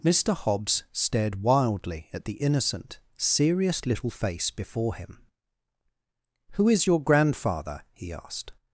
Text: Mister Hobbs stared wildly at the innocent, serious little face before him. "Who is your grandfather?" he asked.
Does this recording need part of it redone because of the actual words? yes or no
no